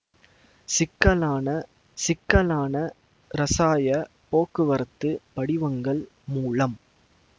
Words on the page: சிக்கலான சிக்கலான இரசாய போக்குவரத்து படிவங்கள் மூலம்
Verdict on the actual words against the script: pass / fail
pass